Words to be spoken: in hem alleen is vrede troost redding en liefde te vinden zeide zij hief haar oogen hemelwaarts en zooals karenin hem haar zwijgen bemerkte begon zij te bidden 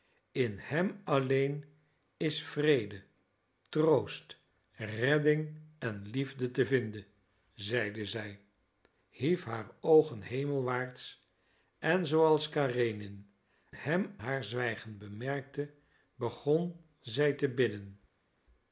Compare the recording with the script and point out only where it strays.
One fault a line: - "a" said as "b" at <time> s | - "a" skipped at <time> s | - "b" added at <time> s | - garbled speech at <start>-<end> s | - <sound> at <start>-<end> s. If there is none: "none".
none